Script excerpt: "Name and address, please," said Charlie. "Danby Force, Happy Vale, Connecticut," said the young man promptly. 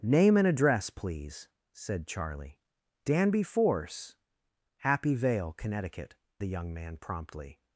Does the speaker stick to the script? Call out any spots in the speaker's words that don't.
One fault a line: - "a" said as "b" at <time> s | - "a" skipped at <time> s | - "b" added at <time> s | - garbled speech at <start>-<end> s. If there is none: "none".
- "said" skipped at 6.2 s